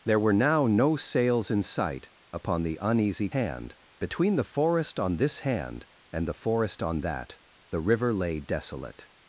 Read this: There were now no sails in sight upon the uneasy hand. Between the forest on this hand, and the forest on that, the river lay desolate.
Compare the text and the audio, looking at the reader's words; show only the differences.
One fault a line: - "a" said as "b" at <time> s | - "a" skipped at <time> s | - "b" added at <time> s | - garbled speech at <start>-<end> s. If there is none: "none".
none